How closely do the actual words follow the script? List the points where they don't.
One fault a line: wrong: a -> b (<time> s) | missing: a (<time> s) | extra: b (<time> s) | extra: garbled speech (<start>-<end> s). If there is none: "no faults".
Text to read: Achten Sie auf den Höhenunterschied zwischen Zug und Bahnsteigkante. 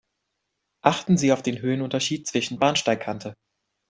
missing: Zug und (2.6 s)